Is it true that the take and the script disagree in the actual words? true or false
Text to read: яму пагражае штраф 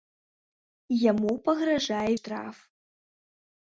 false